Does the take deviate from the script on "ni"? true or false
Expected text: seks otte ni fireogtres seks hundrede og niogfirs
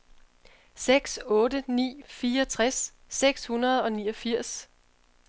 false